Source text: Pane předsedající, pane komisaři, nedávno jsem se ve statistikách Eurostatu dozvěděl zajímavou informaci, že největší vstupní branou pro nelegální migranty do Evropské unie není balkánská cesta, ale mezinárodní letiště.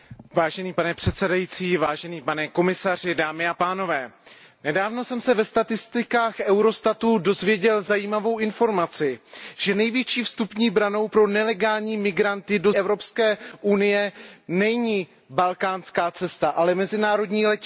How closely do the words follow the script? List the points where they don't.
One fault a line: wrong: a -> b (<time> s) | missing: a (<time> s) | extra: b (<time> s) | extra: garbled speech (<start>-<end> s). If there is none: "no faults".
no faults